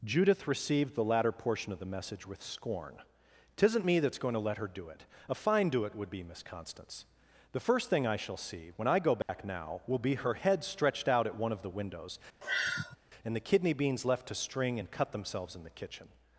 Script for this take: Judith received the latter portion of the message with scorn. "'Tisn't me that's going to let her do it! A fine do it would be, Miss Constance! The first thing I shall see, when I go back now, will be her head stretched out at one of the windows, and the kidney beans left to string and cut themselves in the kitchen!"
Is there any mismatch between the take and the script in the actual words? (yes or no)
no